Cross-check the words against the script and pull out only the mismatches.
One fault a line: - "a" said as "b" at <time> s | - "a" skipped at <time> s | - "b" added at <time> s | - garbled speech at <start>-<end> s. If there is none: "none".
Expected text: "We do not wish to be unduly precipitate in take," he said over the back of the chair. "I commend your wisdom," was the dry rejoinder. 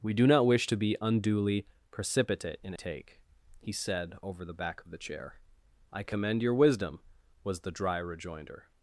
none